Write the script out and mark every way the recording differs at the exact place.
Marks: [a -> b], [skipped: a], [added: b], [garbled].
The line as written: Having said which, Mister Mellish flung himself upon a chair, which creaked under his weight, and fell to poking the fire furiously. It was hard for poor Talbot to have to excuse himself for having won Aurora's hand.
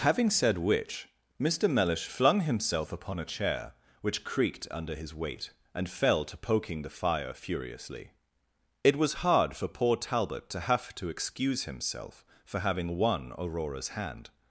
Having said which, Mister Mellish flung himself upon a chair, which creaked under his weight, and fell to poking the fire furiously. It was hard for poor Talbot to have to excuse himself for having won Aurora's hand.